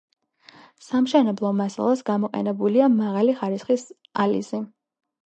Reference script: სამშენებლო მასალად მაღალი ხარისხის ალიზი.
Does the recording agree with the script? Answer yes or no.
no